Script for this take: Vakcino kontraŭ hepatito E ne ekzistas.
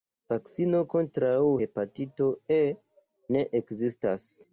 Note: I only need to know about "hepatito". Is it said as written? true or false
true